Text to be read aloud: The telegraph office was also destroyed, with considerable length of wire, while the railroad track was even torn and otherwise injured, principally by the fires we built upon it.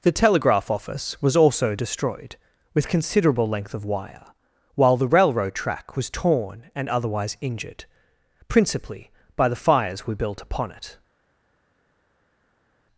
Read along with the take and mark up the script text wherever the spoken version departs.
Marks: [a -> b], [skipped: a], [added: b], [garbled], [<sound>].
The telegraph office was also destroyed, with considerable length of wire, while the railroad track was [skipped: even] torn and otherwise injured, principally by the fires we built upon it.